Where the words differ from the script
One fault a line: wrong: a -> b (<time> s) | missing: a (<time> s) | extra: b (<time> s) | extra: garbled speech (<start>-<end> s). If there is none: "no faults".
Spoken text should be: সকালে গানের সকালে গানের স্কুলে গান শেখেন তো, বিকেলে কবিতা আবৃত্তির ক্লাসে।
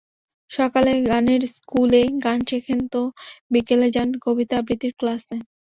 missing: সকালে গানের (1.4 s)
extra: যান (3.9 s)